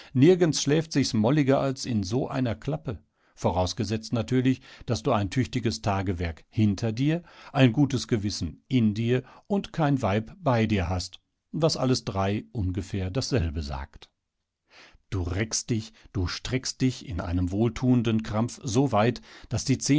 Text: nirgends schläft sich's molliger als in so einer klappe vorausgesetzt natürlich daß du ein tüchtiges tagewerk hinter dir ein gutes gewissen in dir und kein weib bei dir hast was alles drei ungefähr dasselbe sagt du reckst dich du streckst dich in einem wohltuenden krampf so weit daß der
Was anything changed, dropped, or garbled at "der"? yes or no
yes